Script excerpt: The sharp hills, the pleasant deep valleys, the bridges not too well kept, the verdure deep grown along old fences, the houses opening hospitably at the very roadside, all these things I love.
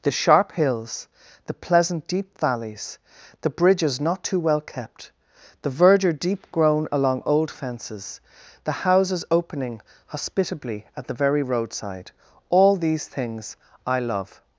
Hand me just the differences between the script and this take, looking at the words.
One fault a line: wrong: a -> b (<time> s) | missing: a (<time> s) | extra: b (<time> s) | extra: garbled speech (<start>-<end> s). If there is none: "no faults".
no faults